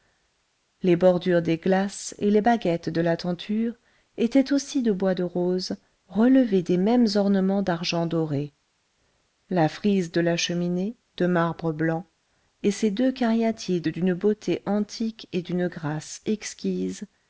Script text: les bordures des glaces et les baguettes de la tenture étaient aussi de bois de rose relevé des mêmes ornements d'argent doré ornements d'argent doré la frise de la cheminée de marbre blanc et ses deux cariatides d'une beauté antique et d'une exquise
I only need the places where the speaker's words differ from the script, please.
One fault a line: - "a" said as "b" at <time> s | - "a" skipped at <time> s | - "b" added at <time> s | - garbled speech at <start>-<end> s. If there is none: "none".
- "ornements d'argent doré" skipped at 8.5 s
- "grâce" added at 15.7 s